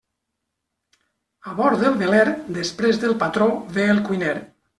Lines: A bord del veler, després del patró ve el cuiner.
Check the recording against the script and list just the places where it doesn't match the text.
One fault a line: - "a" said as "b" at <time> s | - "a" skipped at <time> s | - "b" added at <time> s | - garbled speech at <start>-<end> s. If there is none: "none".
none